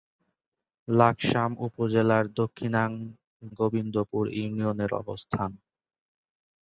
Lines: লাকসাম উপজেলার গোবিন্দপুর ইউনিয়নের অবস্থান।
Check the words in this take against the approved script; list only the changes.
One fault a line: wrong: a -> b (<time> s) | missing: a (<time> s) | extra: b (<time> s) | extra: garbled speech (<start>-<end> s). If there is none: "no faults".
no faults